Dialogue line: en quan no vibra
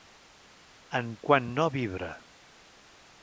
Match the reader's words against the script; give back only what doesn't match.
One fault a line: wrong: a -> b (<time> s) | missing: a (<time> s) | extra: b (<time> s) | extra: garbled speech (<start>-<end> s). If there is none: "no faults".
no faults